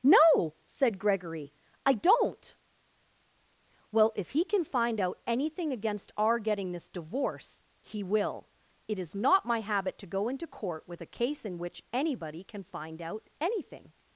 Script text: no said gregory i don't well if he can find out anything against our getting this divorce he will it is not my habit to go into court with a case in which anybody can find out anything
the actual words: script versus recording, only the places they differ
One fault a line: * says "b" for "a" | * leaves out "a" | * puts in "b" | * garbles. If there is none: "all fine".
all fine